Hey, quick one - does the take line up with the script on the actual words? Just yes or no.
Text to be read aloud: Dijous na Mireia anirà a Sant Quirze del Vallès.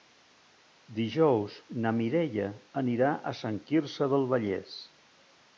yes